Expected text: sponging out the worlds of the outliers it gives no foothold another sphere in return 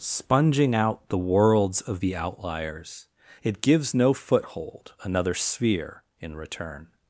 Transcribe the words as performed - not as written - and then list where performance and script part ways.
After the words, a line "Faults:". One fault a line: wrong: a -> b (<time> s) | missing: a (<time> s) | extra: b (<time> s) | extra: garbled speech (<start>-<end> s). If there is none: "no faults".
sponging out the worlds of the outliers it gives no foothold another sphere in return
Faults:
no faults